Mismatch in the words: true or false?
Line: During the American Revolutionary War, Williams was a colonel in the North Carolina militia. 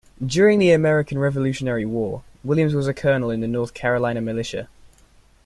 false